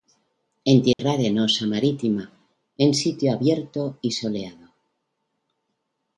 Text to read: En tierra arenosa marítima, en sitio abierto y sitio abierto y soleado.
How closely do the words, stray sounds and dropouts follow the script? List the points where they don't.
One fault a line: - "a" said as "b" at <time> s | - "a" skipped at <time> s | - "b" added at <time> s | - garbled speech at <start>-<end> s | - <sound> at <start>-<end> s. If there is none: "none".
- dropout at 0.9-1.0 s
- "sitio abierto y" skipped at 4.1 s